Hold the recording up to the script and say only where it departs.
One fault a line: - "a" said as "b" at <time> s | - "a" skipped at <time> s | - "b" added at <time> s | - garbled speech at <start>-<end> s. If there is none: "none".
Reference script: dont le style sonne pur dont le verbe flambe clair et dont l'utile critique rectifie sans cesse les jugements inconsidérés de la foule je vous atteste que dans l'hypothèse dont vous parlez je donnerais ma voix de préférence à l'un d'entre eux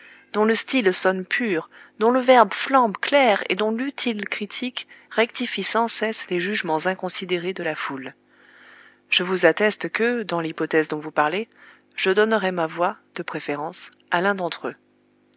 none